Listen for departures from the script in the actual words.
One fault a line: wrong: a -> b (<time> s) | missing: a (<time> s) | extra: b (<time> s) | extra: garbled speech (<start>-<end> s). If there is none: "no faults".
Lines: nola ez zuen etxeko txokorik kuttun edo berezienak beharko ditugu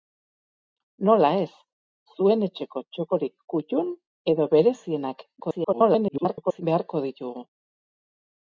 extra: garbled speech (5.4-6.6 s)